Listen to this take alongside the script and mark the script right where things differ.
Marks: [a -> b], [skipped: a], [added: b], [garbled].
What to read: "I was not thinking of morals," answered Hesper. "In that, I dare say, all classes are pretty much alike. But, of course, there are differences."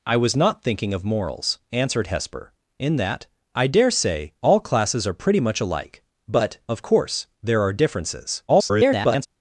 "I was not thinking of morals," answered Hesper. "In that, I dare say, all classes are pretty much alike. But, of course, there are differences." [garbled]